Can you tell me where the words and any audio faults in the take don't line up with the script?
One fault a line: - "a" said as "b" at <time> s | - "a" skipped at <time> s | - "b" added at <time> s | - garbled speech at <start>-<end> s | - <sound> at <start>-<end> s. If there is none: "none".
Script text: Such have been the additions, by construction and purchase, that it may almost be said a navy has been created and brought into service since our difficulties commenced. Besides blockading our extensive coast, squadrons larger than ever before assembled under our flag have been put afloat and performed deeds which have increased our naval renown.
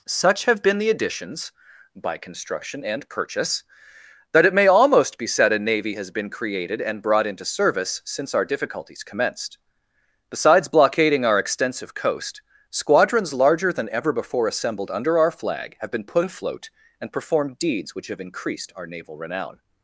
none